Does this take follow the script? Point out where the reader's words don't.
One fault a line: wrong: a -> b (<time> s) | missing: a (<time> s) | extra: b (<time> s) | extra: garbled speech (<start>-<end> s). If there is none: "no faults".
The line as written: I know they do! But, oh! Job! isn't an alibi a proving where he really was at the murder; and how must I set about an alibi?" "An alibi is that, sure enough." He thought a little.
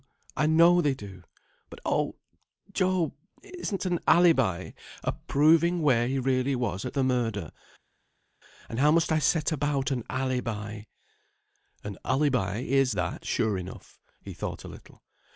no faults